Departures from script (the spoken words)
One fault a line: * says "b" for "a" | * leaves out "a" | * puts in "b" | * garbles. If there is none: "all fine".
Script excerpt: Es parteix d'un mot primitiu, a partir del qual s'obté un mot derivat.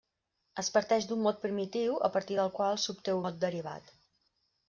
* leaves out "un"